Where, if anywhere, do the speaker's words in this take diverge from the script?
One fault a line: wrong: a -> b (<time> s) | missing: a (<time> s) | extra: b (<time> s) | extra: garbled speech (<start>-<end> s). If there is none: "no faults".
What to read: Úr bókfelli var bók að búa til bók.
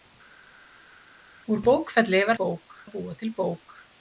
no faults